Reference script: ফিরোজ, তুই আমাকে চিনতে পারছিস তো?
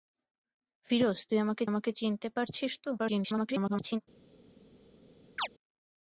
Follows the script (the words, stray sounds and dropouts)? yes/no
no